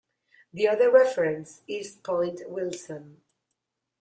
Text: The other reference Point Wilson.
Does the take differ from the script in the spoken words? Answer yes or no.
yes